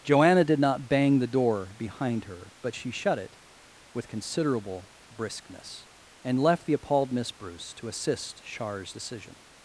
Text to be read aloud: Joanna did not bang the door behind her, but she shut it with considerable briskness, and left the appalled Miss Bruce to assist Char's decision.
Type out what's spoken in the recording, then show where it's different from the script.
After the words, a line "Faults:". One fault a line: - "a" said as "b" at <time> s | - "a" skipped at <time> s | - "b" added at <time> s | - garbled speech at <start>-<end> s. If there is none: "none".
Joanna did not bang the door behind her, but she shut it with considerable briskness, and left the appalled Miss Bruce to assist Char's decision.
Faults:
none